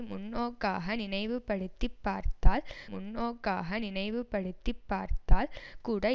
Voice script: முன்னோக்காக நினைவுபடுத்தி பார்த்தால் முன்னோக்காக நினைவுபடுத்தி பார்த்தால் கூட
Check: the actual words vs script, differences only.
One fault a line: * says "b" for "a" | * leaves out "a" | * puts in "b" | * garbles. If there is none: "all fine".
all fine